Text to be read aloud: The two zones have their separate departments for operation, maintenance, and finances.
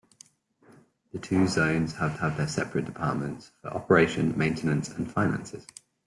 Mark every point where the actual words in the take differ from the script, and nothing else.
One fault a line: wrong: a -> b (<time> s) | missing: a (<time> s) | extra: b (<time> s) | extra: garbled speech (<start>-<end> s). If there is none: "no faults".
extra: have (2.1 s)